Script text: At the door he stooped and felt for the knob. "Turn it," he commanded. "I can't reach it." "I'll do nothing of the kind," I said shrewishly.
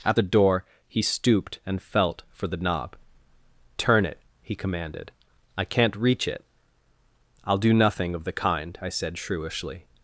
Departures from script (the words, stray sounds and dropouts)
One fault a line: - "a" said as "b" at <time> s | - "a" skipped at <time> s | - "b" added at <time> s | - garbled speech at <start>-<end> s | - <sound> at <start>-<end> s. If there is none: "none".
none